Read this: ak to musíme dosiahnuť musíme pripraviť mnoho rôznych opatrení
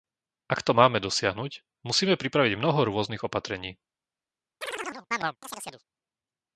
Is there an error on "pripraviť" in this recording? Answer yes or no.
no